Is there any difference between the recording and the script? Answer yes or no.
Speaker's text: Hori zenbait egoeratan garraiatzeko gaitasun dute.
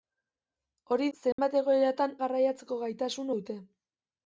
no